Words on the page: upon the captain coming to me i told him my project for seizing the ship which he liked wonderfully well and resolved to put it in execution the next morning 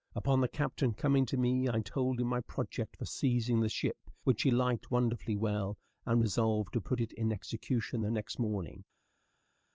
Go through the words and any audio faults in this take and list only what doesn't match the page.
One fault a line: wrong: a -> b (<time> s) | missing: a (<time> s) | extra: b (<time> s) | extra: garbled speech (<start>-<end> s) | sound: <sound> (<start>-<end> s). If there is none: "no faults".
no faults